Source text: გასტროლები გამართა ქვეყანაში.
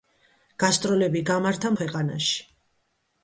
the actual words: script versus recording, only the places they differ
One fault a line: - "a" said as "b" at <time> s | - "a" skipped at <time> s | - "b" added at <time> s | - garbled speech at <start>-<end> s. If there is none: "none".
none